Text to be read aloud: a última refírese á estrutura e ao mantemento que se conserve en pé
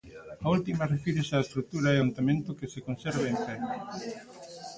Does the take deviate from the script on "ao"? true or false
true